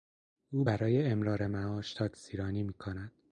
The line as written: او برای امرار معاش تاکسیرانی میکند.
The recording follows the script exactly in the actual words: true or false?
true